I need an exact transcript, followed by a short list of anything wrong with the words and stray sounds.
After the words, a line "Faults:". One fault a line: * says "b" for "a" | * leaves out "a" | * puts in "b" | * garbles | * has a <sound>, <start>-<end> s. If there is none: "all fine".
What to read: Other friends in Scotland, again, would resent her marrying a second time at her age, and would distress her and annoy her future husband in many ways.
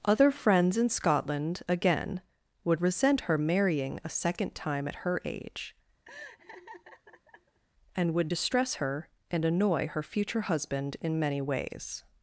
Other friends in Scotland, again, would resent her marrying a second time at her age, and would distress her and annoy her future husband in many ways.
Faults:
* has a laugh, 6.0-7.6 s